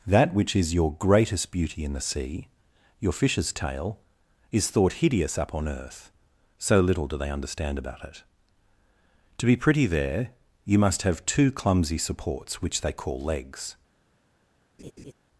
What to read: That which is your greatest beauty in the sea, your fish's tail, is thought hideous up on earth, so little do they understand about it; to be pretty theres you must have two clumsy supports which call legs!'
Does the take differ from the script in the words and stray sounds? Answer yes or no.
yes